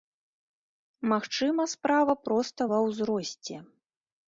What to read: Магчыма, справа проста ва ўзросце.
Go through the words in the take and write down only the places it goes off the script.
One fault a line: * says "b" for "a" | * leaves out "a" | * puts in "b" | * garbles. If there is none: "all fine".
all fine